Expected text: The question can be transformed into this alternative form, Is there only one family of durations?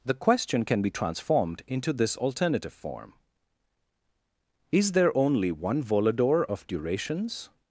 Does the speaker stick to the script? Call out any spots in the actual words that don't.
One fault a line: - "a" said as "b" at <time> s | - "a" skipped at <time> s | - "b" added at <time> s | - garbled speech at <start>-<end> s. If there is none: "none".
- "family" said as "volador" at 5.8 s